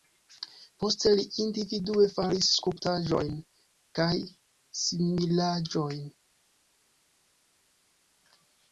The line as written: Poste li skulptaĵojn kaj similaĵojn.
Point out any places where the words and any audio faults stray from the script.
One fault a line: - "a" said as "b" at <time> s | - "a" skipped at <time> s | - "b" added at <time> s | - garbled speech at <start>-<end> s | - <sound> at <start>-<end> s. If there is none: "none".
- "individue faris" added at 1.5 s